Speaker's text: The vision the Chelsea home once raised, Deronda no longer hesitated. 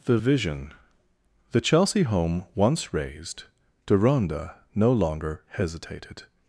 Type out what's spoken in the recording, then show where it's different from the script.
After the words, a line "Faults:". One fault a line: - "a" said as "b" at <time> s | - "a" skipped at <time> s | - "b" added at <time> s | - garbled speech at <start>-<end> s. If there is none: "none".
The vision the Chelsea home once raised, Deronda no longer hesitated.
Faults:
none